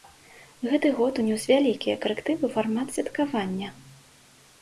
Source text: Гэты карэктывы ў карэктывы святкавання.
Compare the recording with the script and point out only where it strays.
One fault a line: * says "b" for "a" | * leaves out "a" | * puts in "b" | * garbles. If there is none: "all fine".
* puts in "год унёс вялікія"
* says "фармат" for "карэктывы"